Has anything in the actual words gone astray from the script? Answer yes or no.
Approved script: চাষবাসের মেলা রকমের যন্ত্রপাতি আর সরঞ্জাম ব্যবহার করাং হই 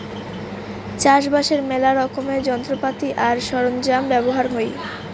yes